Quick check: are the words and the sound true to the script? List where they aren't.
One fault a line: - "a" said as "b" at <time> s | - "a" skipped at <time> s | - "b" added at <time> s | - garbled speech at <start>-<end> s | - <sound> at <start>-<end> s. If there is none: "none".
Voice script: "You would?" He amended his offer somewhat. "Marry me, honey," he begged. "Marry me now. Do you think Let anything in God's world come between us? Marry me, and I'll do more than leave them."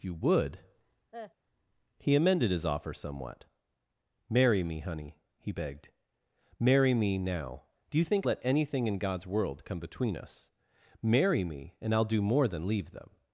- cough at 1.1-1.3 s